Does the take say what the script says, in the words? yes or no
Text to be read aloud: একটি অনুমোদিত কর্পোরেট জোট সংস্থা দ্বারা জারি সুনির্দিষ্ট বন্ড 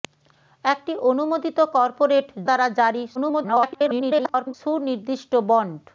no